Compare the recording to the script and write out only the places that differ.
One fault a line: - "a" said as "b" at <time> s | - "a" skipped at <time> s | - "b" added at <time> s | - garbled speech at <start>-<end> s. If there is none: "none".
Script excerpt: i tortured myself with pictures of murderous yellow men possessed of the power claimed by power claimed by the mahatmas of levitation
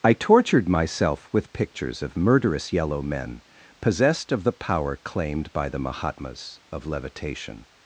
- "power claimed by" skipped at 5.7 s